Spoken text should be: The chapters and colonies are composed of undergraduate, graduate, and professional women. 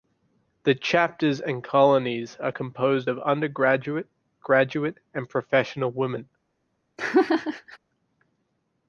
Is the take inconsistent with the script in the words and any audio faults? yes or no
yes